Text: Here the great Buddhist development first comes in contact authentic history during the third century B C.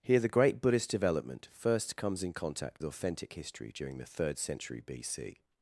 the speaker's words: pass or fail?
pass